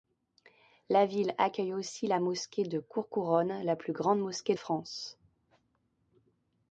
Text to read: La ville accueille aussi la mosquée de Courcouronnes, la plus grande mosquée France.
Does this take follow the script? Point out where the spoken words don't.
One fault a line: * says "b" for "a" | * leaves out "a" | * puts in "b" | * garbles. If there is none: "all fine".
all fine